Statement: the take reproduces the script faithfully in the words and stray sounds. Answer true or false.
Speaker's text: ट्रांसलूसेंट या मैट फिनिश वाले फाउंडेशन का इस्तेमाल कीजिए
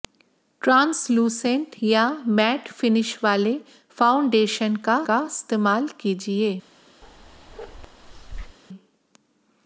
false